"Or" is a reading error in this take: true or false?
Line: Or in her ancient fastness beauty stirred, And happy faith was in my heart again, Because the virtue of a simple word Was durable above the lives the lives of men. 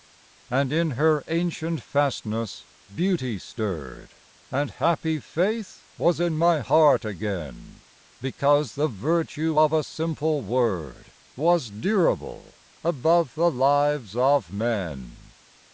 true